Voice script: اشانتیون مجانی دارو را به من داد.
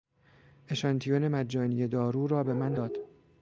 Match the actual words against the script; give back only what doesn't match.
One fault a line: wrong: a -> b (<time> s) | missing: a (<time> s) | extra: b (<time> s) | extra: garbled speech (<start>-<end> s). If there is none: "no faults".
no faults